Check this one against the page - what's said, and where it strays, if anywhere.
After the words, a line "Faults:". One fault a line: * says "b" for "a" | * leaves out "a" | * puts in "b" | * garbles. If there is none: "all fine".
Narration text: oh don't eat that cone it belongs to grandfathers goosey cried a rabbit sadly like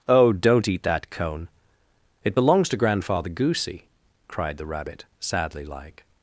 oh don't eat that cone it belongs to grandfather goosey cried the rabbit sadly like
Faults:
* says "grandfather" for "grandfathers"
* says "the" for "a"